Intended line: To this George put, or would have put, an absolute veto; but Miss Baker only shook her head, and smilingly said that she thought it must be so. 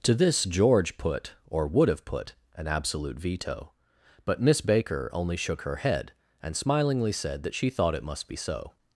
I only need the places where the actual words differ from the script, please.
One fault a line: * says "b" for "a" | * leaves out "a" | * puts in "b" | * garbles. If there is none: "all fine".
all fine